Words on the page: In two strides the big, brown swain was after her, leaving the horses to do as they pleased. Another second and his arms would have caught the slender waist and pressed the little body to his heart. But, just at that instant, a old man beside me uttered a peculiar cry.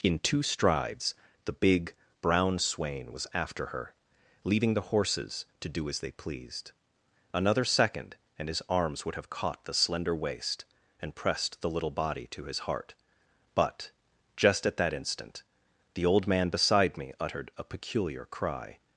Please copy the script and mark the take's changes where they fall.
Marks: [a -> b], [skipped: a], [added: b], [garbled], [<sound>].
In two strides the big, brown swain was after her, leaving the horses to do as they pleased. Another second and his arms would have caught the slender waist and pressed the little body to his heart. But, just at that instant, [a -> the] old man beside me uttered a peculiar cry.